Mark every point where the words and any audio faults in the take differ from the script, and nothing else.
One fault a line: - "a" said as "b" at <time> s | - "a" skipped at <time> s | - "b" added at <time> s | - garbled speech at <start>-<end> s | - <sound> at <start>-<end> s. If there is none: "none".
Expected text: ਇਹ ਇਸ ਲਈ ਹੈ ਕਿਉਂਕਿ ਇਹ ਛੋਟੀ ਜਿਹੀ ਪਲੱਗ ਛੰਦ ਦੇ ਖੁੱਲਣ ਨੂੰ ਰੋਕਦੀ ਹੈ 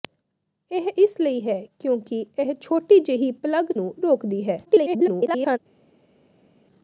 - "ਛੰਦ ਦੇ ਖੁੱਲਣ" skipped at 3.7 s
- garbled speech at 4.7-5.6 s